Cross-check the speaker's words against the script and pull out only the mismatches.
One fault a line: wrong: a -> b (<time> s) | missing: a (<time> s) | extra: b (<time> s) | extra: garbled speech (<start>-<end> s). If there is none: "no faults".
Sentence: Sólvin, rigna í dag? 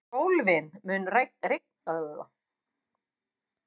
extra: mun (0.9 s)